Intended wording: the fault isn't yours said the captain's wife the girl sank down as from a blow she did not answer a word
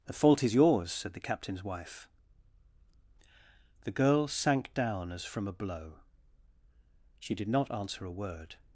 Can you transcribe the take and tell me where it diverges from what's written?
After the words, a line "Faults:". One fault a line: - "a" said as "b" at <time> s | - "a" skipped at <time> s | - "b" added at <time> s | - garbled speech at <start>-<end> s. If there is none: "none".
the fault is yours said the captain's wife the girl sank down as from a blow she did not answer a word
Faults:
- "isn't" said as "is" at 0.4 s